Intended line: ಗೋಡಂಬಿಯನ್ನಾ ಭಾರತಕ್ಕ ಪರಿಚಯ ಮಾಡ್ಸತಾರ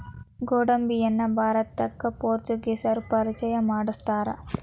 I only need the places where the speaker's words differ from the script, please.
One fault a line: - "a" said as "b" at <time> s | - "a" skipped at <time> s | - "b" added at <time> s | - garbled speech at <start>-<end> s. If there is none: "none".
- "ಪೋರ್ಚುಗೇಸರು" added at 2.2 s